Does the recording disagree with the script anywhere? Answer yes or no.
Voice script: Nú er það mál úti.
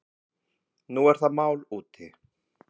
no